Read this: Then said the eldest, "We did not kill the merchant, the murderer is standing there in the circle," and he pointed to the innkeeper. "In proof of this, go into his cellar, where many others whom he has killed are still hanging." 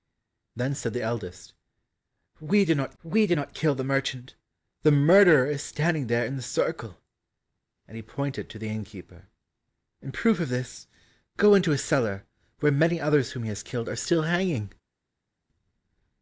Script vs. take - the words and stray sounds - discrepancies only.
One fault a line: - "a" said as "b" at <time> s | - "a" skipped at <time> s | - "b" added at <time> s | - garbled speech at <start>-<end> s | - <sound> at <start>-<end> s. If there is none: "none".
- "we did not" added at 3.0 s